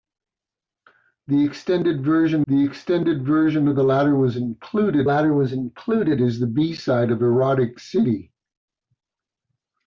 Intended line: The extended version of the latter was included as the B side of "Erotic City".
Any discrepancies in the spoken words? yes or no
yes